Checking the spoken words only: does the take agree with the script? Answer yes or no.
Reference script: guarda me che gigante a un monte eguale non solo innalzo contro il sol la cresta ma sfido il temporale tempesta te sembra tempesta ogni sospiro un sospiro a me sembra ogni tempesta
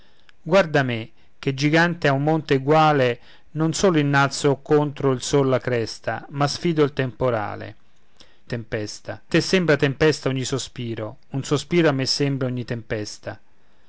yes